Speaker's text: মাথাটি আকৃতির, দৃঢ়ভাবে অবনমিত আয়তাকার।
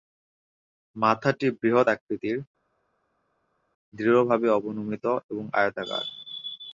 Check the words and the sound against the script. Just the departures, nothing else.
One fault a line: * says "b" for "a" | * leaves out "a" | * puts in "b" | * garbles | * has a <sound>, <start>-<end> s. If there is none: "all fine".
* puts in "বৃহৎ"
* puts in "এবং"